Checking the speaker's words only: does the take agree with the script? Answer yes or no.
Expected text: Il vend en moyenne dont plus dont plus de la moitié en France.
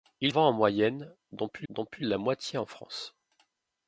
yes